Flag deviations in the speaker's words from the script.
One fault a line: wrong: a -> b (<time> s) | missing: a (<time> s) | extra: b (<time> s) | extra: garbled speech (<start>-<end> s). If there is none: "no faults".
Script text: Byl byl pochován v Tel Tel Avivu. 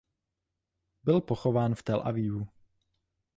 missing: byl (1.2 s)
missing: Tel (2.0 s)